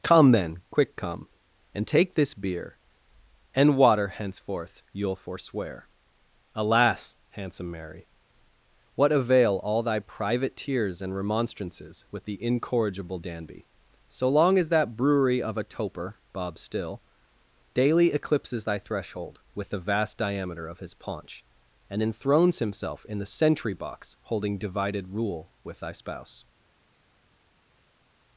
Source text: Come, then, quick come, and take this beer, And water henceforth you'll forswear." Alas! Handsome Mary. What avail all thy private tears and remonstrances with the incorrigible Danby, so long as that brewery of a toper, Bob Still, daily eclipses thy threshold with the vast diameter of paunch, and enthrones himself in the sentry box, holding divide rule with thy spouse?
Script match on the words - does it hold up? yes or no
no